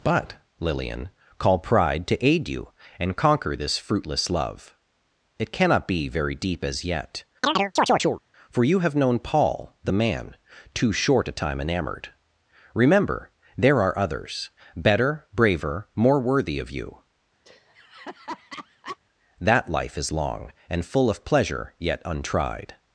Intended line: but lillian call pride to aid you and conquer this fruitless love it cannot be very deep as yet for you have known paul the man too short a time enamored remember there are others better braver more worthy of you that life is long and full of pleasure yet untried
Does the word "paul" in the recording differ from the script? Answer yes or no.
no